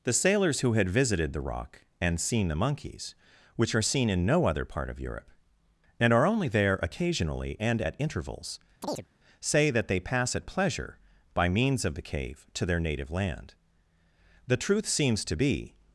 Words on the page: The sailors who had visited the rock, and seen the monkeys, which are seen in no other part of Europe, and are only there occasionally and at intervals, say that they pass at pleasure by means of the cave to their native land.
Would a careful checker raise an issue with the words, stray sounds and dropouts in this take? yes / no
yes